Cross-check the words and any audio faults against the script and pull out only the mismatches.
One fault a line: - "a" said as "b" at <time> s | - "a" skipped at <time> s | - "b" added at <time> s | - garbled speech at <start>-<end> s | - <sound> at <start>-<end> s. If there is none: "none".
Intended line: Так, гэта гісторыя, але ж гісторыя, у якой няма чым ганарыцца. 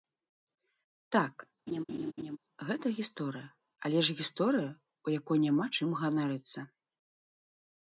- laugh at 1.7-2.4 s